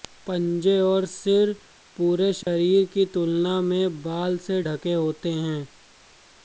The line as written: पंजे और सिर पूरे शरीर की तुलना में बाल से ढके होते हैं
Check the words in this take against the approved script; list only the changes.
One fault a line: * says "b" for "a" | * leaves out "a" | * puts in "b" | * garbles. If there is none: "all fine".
all fine